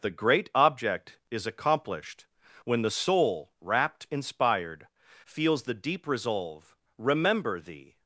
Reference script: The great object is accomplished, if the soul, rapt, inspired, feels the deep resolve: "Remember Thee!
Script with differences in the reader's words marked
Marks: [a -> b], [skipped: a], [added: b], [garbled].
The great object is accomplished, [if -> when] the soul, rapt, inspired, feels the deep resolve: "Remember Thee!